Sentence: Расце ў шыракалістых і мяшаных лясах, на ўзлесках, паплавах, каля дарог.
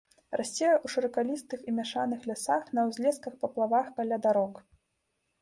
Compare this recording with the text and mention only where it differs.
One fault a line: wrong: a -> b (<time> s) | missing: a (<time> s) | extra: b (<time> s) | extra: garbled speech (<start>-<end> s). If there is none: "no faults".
no faults